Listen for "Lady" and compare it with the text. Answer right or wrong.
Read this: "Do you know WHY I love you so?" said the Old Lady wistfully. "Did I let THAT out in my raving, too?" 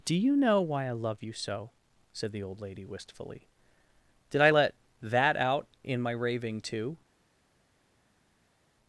right